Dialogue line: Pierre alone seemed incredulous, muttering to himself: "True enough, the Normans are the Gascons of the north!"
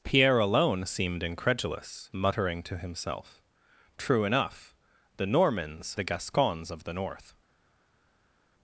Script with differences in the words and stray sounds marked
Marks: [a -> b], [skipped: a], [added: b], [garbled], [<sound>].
Pierre alone seemed incredulous, muttering to himself: "True enough, the Normans [skipped: are] the Gascons of the north!"